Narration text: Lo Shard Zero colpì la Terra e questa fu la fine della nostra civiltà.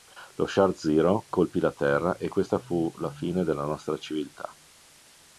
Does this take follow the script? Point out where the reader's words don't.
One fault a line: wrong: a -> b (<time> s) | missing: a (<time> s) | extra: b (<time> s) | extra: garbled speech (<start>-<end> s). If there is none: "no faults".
no faults